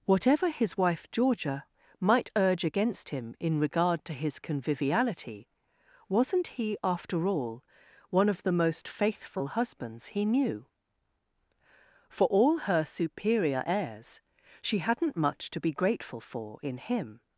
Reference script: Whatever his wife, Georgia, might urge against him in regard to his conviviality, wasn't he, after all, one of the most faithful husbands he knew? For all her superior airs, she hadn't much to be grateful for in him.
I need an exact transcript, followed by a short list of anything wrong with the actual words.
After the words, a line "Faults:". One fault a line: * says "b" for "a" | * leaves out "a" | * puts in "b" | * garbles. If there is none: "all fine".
Whatever his wife, Georgia, might urge against him in regard to his conviviality, wasn't he, after all, one of the most faithful husbands he knew? For all her superior airs, she hadn't much to be grateful for in him.
Faults:
all fine